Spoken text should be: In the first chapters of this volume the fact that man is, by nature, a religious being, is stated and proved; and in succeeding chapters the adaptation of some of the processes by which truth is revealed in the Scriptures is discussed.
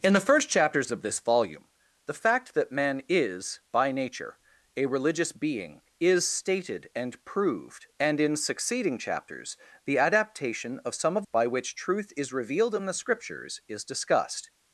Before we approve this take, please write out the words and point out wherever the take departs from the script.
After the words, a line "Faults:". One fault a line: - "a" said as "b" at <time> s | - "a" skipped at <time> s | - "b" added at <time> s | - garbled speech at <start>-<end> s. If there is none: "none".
In the first chapters of this volume the fact that man is, by nature, a religious being, is stated and proved; and in succeeding chapters the adaptation of some of by which truth is revealed in the Scriptures is discussed.
Faults:
- "the processes" skipped at 11.3 s